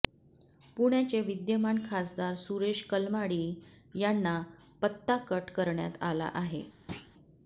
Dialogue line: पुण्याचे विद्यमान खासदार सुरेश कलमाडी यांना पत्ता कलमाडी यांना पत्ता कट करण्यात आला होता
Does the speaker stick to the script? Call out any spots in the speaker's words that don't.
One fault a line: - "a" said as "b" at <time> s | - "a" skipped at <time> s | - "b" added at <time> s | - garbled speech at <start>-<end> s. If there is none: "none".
- "कलमाडी यांना पत्ता" skipped at 5.2 s
- "होता" said as "आहे" at 6.3 s